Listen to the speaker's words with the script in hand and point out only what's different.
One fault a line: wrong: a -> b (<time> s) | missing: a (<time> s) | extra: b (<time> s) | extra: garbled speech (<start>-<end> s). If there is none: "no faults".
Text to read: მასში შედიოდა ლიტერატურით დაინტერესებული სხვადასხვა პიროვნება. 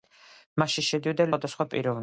missing: ლიტერატურით დაინტერესებული (1.3 s)